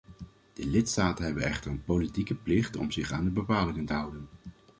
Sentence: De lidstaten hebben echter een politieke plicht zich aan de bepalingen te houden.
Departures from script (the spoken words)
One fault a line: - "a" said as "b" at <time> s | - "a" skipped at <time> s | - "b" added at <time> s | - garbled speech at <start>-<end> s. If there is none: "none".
- "om" added at 2.8 s